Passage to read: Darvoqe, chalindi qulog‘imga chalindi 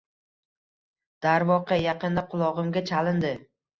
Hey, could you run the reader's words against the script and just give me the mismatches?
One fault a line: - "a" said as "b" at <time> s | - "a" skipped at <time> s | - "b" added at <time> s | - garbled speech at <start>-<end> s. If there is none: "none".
- "chalindi" said as "yaqinda" at 1.8 s